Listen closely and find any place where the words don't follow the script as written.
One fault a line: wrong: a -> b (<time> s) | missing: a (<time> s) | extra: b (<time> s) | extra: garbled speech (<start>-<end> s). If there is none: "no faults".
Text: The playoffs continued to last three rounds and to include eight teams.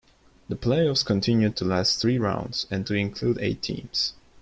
no faults